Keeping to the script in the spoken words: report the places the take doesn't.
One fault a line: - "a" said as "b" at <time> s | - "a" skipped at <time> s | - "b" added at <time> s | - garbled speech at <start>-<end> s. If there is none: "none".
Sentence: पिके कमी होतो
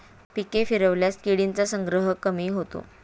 - "फिरवल्यास किडींचा संग्रह" added at 0.6 s